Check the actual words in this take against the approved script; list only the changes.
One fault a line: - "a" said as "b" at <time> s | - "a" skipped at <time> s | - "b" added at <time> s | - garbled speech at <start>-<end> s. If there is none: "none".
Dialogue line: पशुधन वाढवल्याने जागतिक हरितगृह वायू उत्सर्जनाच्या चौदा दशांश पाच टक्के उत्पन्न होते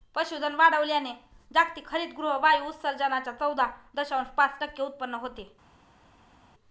none